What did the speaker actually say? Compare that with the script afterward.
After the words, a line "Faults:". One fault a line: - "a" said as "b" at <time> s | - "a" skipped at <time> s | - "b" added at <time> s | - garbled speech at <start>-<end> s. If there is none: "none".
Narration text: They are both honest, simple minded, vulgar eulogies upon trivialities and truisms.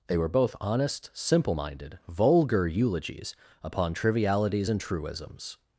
They were both honest, simple minded, vulgar eulogies upon trivialities and truisms.
Faults:
- "are" said as "were" at 0.2 s